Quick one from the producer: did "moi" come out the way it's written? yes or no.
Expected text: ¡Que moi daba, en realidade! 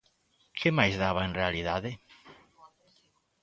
no